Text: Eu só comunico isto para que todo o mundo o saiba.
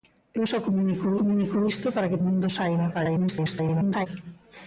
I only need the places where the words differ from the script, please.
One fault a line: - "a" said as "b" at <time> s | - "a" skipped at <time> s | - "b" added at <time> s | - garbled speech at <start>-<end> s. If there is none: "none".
- "comunico" added at 1.2 s
- "todo" skipped at 2.2 s
- garbled speech at 2.9-4.1 s